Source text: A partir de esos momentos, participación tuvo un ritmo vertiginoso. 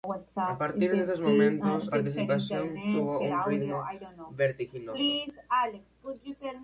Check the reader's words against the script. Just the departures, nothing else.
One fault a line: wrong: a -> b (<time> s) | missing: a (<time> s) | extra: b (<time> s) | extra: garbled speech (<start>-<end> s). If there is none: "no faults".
no faults